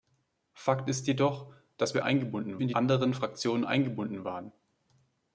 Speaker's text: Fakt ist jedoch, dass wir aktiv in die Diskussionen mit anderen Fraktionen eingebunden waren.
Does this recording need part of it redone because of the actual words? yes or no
yes